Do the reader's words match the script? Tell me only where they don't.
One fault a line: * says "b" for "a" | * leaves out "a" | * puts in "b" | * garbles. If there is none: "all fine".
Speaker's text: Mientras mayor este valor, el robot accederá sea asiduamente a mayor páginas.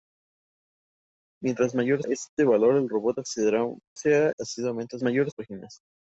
all fine